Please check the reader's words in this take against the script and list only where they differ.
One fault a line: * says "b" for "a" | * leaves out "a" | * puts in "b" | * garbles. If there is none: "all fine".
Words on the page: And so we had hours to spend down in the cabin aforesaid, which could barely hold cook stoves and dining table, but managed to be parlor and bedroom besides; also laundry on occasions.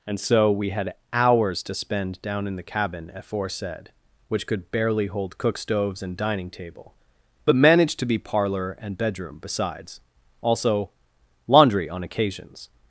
all fine